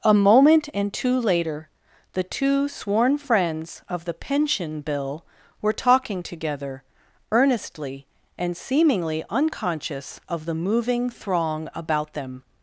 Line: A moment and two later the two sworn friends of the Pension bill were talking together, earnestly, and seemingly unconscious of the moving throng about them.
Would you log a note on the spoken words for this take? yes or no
no